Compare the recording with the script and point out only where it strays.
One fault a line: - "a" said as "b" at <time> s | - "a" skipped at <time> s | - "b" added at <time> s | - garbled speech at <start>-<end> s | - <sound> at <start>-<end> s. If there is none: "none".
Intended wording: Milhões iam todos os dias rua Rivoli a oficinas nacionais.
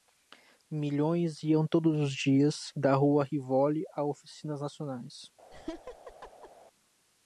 - "da" added at 2.8 s
- laugh at 5.5-6.5 s